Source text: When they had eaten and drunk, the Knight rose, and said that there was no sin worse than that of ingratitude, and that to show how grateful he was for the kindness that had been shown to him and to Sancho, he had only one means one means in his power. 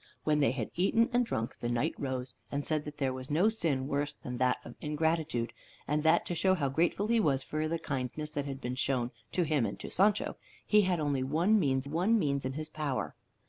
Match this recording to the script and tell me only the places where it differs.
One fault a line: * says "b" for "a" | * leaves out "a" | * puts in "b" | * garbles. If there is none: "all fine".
all fine